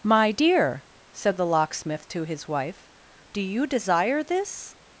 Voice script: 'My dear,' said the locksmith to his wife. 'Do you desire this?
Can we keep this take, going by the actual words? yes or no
yes